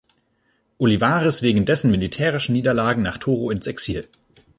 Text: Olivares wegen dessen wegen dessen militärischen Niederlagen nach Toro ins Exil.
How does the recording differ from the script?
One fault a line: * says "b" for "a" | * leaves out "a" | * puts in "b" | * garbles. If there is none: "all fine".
* leaves out "wegen dessen"